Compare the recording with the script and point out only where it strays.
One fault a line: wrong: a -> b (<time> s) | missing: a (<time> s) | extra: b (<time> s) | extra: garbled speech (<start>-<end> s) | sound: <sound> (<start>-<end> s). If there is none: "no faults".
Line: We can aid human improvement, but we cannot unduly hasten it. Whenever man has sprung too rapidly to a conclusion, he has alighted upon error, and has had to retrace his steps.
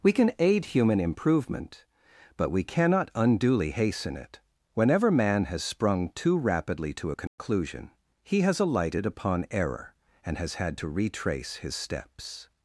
sound: dropout (7.3-7.4 s)